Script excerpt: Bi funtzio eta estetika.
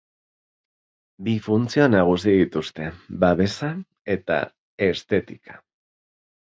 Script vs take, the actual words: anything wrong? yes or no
yes